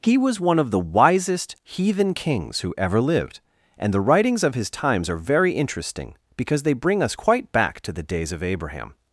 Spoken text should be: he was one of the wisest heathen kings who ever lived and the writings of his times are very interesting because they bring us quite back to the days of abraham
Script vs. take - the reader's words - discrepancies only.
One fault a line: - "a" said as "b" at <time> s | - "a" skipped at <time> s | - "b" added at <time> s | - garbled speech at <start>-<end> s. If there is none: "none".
none